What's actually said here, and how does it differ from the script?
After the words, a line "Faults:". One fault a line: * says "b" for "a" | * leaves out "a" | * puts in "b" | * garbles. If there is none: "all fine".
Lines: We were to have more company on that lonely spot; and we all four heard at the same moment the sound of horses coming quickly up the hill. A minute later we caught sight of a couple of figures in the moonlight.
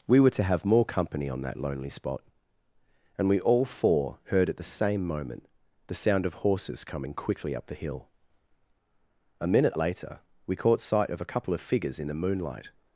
We were to have more company on that lonely spot; and we all four heard at the same moment the sound of horses coming quickly up the hill. A minute later we caught sight of a couple of figures in the moonlight.
Faults:
all fine